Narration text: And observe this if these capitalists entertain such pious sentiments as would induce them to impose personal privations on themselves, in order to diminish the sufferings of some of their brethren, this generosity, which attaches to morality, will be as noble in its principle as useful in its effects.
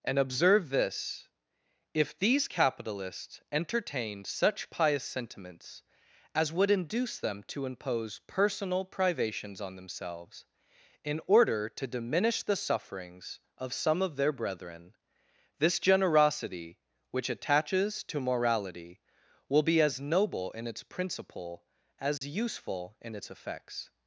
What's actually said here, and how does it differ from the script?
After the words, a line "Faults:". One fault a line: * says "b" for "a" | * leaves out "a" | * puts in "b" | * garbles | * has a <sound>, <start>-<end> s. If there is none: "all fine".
And observe this if these capitalists entertained such pious sentiments as would induce them to impose personal privations on themselves, in order to diminish the sufferings of some of their brethren, this generosity, which attaches to morality, will be as noble in its principle as useful in its effects.
Faults:
* says "entertained" for "entertain"
* has a dropout, 22.2-22.2 s